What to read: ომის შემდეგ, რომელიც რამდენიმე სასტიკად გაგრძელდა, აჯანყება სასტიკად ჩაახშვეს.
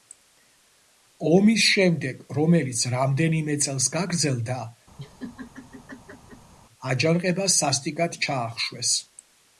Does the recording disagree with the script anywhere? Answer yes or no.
yes